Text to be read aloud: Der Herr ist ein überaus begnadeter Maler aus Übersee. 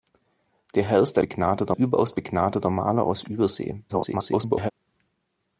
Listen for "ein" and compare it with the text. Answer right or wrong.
wrong